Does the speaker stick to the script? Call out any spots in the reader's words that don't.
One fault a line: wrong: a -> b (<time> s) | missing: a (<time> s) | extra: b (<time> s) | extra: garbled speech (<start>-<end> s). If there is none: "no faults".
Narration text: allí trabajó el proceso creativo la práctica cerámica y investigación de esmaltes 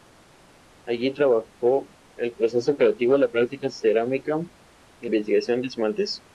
no faults